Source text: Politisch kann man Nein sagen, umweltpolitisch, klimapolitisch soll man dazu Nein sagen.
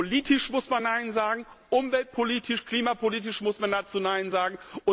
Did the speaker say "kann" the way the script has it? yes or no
no